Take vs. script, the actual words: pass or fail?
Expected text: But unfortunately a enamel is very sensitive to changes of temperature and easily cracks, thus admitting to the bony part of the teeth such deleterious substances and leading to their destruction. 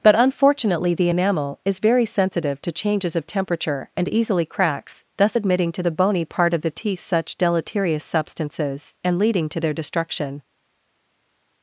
fail